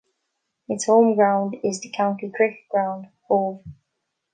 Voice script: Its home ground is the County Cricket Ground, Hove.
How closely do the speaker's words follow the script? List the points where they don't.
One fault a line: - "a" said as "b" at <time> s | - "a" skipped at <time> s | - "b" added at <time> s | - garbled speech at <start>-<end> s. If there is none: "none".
none